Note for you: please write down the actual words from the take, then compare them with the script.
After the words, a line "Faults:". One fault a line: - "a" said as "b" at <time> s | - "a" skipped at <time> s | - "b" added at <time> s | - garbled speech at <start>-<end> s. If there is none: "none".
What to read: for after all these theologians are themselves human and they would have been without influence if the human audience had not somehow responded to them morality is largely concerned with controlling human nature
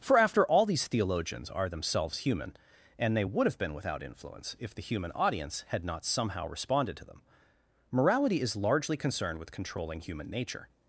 for after all these theologians are themselves human and they would have been without influence if the human audience had not somehow responded to them morality is largely concerned with controlling human nature
Faults:
none